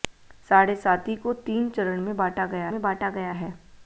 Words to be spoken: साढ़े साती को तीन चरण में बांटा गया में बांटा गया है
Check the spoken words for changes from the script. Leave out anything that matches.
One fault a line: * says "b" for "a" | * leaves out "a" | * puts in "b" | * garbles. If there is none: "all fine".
all fine